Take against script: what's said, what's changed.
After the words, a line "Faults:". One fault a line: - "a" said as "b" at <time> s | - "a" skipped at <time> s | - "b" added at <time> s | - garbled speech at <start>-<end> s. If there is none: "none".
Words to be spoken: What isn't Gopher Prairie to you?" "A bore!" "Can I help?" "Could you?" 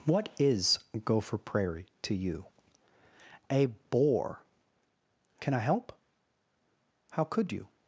What is Gopher Prairie to you?" "A bore!" "Can I help?" "How could you?"
Faults:
- "isn't" said as "is" at 0.4 s
- "How" added at 7.1 s